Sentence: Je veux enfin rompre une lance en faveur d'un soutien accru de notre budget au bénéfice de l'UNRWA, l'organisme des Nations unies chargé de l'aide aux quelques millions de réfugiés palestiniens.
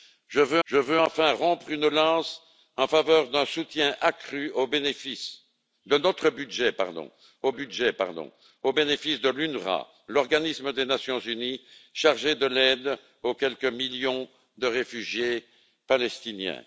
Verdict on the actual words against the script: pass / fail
fail